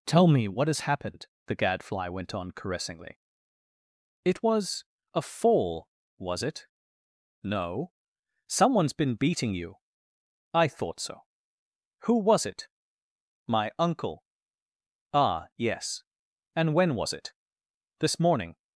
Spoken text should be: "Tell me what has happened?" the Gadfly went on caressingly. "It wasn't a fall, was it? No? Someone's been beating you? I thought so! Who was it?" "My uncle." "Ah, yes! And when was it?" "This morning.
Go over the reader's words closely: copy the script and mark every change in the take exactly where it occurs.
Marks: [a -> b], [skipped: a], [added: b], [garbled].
"Tell me what has happened?" the Gadfly went on caressingly. "It [wasn't -> was] a fall, was it? No? Someone's been beating you? I thought so! Who was it?" "My uncle." "Ah, yes! And when was it?" "This morning.